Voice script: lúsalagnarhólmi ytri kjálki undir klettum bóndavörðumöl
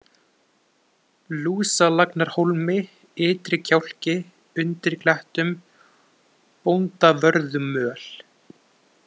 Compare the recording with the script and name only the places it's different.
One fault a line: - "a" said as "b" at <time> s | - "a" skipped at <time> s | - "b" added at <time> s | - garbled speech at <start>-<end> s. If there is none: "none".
none